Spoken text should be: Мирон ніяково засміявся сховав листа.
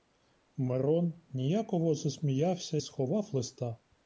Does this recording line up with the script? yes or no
yes